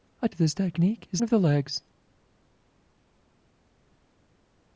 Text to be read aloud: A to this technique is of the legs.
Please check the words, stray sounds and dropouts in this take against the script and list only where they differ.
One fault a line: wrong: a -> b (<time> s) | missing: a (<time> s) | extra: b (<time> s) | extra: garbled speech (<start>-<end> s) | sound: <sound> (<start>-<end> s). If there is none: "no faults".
no faults